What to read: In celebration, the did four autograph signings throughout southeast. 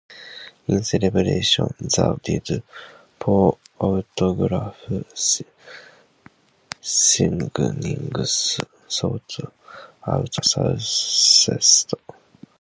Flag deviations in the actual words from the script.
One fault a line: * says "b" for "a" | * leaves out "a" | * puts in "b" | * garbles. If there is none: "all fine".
all fine